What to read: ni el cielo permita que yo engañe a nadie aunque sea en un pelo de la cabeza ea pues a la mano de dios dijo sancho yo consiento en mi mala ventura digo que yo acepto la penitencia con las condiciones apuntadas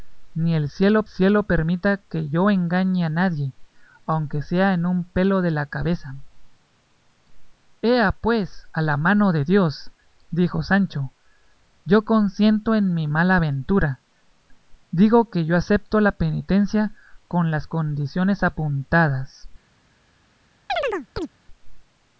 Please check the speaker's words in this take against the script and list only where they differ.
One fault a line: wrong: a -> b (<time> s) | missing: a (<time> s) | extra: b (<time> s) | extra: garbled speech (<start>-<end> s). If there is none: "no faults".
extra: cielo (1.1 s)